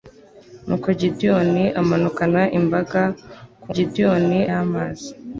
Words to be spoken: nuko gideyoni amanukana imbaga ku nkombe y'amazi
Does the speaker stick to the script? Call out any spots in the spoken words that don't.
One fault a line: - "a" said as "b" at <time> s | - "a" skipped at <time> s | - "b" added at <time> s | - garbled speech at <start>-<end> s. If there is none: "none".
- "nkombe" said as "gideyoni" at 3.7 s